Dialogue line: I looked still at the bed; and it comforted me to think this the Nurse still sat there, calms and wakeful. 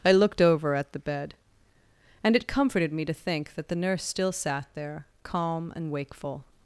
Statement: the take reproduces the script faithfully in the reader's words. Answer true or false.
false